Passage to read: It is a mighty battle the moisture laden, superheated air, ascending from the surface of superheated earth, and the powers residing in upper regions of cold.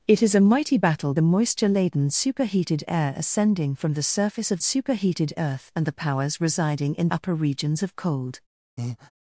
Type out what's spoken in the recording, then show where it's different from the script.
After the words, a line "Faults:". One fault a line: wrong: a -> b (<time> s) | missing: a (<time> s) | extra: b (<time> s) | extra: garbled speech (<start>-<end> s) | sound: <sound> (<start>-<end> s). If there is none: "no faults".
It is a mighty battle the moisture laden, superheated air, ascending from the surface of superheated earth, and the powers residing in upper regions of cold.
Faults:
sound: breath (8.8-9.1 s)